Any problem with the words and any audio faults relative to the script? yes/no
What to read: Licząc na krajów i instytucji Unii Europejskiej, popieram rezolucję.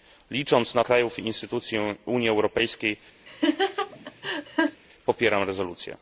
yes